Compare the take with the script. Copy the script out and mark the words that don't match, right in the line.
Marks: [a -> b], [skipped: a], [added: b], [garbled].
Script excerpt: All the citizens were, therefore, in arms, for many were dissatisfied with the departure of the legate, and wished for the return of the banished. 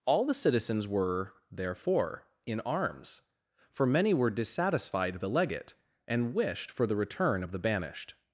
All the citizens were, therefore, in arms, for many were dissatisfied [skipped: with the departure of] the legate, and wished for the return of the banished.